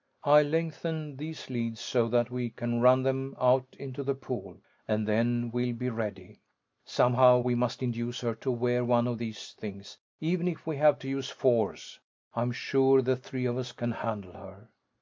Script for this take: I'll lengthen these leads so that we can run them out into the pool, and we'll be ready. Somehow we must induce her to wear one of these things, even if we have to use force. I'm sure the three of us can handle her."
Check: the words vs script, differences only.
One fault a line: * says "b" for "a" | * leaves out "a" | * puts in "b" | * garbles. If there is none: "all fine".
* puts in "then"